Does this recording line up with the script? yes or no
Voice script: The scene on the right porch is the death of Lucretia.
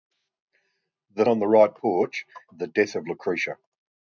no